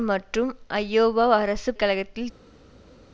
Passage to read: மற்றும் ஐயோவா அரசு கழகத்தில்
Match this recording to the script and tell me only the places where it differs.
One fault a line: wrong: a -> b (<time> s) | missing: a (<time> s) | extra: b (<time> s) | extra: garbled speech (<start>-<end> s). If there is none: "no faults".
no faults